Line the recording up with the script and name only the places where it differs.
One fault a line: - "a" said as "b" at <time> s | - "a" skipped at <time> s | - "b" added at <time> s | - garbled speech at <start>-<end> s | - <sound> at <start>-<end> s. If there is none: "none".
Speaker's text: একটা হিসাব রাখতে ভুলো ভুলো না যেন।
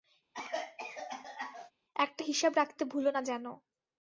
- cough at 0.3-1.7 s
- "ভুলো" skipped at 3.1 s